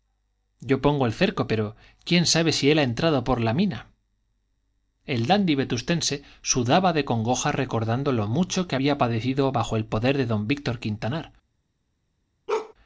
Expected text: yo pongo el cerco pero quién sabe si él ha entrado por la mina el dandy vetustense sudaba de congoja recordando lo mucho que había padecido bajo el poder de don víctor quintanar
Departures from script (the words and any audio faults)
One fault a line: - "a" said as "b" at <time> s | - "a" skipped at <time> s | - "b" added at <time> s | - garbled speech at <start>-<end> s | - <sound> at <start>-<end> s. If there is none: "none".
- bark at 12.5-12.7 s